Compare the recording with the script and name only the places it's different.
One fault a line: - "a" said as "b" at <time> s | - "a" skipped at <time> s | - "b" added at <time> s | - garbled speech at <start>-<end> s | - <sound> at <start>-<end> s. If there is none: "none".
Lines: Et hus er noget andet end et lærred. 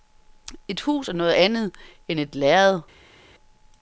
none